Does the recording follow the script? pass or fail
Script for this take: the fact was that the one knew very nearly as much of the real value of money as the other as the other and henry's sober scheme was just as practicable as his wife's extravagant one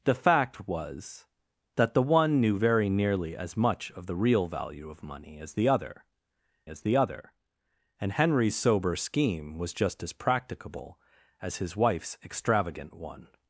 pass